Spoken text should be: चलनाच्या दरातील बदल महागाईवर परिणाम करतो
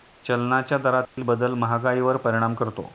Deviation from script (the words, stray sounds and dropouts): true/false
true